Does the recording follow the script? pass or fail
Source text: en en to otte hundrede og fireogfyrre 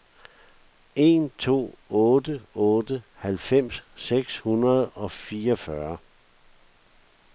fail